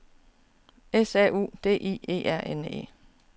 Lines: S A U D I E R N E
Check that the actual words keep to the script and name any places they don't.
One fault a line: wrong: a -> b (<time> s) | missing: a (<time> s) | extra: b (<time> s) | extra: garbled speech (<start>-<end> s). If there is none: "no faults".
no faults